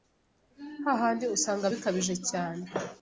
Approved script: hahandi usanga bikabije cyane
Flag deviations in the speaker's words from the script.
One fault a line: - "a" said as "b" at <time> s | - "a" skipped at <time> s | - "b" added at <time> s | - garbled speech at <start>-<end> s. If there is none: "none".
none